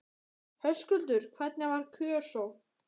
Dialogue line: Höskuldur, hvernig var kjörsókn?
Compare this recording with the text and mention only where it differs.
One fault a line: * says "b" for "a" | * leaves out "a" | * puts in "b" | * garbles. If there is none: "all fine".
all fine